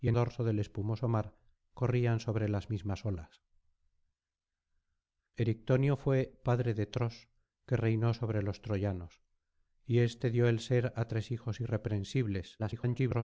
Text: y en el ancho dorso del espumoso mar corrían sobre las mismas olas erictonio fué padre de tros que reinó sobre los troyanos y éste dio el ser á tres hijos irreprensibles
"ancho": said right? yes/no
no